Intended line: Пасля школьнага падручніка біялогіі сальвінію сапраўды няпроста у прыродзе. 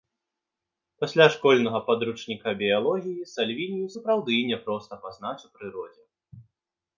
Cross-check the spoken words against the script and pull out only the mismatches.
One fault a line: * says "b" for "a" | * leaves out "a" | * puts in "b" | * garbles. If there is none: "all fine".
* puts in "пазнаць"